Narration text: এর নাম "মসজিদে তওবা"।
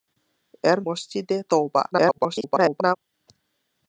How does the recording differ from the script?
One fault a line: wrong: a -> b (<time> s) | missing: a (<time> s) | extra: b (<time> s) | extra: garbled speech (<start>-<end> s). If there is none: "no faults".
missing: নাম (0.8 s)
extra: garbled speech (1.9-3.0 s)